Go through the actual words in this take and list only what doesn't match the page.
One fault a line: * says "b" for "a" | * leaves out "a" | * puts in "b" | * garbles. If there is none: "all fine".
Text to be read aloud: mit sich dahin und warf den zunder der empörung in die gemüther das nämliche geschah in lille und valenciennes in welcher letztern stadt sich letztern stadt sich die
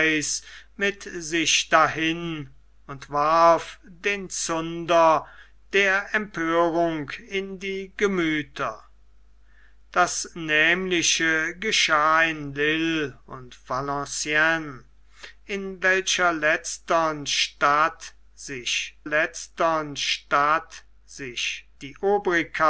all fine